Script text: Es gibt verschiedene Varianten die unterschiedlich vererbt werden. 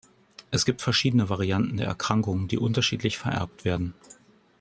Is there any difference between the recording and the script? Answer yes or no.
yes